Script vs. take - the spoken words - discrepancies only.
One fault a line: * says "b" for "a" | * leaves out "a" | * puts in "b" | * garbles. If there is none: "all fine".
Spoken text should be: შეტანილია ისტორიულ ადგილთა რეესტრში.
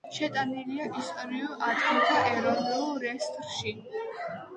* puts in "ეროვნულ"